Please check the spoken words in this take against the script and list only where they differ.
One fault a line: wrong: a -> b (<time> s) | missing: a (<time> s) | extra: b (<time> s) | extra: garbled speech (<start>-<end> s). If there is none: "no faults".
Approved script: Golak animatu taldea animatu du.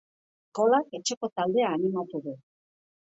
wrong: animatu -> etxeko (1.0 s)